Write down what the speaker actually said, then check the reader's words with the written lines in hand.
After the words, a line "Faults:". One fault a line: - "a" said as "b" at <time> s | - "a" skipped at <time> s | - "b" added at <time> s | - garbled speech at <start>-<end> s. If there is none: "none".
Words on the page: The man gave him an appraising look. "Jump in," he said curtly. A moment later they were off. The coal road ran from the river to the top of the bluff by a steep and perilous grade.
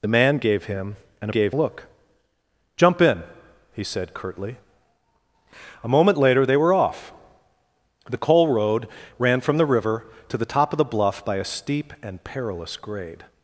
The man gave him an gave look. "Jump in," he said curtly. A moment later they were off. The coal road ran from the river to the top of the bluff by a steep and perilous grade.
Faults:
- "appraising" said as "gave" at 1.3 s